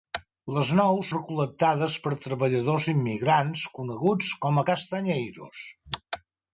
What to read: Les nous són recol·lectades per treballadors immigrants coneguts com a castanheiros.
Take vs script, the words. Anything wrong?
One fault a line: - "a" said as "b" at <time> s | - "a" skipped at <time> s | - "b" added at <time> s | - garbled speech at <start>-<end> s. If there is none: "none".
- "són" skipped at 1.1 s